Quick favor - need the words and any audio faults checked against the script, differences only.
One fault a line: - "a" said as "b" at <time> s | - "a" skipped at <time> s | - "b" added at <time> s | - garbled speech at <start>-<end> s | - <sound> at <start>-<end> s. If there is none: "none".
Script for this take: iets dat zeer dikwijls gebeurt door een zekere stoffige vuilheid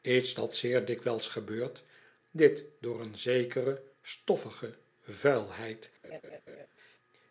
- "dit" added at 2.3 s
- laugh at 6.0-6.7 s